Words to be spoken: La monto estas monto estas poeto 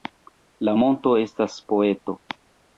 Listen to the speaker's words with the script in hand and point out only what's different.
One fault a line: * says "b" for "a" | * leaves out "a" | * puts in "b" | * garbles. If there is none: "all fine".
* leaves out "monto estas"